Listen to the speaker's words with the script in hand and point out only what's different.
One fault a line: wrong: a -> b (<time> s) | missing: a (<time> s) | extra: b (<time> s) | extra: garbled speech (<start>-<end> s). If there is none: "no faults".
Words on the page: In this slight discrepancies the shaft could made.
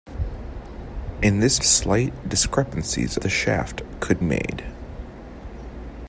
no faults